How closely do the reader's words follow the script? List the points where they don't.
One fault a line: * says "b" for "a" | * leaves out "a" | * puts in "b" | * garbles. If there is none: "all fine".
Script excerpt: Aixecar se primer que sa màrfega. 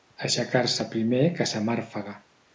all fine